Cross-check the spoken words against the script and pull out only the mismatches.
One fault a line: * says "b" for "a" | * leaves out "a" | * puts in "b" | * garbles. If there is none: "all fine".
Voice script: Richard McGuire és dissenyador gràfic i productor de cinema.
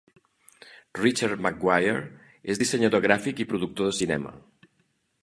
all fine